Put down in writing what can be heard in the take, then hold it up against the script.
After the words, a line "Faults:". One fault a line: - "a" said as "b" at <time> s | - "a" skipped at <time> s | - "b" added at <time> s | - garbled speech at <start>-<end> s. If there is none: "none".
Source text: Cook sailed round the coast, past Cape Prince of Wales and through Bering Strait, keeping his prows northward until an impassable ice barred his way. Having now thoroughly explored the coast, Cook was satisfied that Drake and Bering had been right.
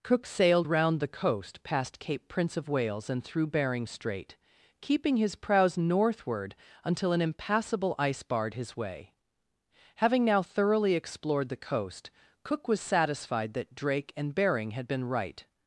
Cook sailed round the coast, past Cape Prince of Wales and through Bering Strait, keeping his prows northward until an impassable ice barred his way. Having now thoroughly explored the coast, Cook was satisfied that Drake and Bering had been right.
Faults:
none